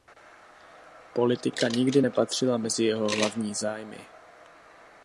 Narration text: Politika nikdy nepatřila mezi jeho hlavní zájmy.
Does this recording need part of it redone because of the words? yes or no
no